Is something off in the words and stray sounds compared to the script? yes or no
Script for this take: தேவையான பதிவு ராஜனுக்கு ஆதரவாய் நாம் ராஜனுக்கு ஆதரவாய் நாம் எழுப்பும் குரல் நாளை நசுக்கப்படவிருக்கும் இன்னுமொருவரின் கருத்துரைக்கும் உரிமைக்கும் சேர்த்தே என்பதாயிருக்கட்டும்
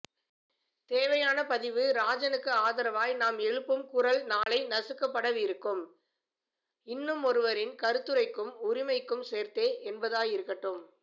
yes